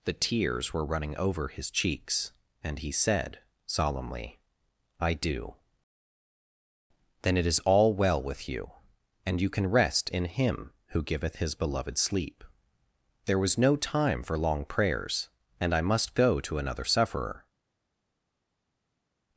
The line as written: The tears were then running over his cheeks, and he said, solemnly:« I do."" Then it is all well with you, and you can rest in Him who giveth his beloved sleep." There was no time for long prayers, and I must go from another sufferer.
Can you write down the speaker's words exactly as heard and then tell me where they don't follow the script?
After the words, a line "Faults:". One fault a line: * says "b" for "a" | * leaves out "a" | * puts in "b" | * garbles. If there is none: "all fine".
The tears were running over his cheeks, and he said, solemnly:« I do."" Then it is all well with you, and you can rest in Him who giveth his beloved sleep." There was no time for long prayers, and I must go to another sufferer.
Faults:
* leaves out "then"
* says "to" for "from"